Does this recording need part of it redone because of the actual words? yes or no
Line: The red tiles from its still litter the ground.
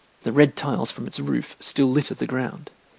yes